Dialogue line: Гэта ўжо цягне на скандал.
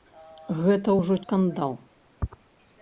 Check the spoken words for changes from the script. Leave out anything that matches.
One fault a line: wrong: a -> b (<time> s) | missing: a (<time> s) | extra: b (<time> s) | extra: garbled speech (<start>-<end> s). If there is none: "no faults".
missing: цягне на (1.2 s)